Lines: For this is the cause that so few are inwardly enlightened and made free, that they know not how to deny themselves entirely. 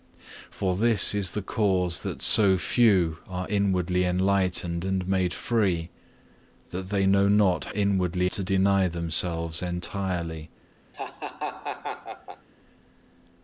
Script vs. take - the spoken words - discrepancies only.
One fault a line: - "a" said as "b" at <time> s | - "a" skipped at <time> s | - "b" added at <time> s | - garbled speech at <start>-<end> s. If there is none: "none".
- "how" said as "inwardly" at 7.7 s